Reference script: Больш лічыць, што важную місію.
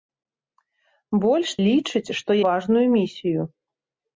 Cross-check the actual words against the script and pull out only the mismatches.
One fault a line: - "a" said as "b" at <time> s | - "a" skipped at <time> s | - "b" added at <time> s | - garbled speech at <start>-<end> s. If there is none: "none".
none